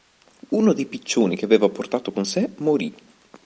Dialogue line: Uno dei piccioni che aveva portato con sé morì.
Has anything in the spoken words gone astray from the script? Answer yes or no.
no